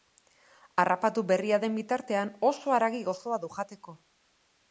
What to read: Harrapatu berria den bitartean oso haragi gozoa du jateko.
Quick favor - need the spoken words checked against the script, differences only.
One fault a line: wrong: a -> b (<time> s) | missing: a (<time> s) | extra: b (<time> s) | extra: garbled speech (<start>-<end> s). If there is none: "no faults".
no faults